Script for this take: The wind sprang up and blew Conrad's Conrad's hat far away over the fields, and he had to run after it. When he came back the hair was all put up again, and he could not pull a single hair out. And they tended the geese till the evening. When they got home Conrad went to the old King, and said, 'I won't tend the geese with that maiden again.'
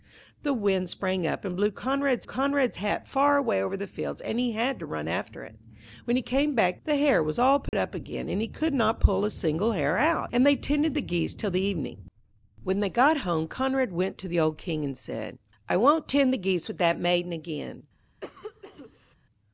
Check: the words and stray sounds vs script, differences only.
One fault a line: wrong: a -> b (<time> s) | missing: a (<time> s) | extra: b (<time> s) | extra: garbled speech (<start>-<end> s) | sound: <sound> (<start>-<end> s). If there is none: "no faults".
sound: dropout (7.7-7.7 s)
sound: cough (18.2-19.2 s)